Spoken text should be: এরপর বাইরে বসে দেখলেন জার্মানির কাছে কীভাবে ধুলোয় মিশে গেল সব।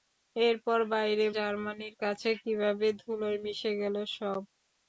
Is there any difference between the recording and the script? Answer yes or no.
yes